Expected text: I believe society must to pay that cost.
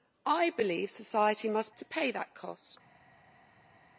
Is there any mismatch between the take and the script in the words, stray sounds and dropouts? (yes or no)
no